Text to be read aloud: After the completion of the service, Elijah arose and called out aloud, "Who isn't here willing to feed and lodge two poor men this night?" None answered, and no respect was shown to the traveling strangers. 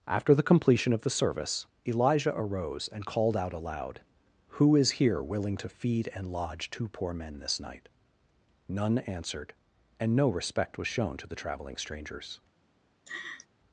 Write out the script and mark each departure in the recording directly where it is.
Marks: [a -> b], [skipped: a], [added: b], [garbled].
After the completion of the service, Elijah arose and called out aloud, "Who [isn't -> is] here willing to feed and lodge two poor men this night?" None answered, and no respect was shown to the traveling strangers.